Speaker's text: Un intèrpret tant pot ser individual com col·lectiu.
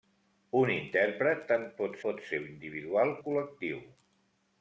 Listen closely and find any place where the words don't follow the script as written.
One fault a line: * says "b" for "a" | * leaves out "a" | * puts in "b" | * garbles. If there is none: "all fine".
* puts in "pot"
* leaves out "com"